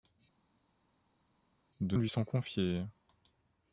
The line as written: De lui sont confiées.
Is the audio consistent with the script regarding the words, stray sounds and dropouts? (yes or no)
yes